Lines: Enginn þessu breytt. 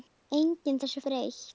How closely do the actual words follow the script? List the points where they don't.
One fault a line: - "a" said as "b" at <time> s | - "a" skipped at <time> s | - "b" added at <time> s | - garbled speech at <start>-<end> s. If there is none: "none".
none